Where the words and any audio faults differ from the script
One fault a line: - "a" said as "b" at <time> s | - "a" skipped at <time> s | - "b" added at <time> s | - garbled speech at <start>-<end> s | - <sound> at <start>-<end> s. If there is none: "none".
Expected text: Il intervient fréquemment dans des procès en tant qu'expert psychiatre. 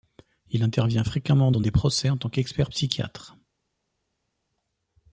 none